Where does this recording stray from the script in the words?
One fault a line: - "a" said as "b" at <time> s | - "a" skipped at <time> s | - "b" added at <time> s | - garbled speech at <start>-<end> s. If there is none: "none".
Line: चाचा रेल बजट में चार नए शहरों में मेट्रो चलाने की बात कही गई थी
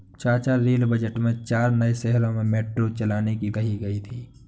- "बात" skipped at 3.5 s